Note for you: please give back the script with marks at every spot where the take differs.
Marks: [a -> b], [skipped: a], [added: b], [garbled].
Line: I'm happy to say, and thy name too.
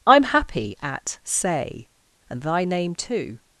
I'm happy [to -> at] say, and thy name too.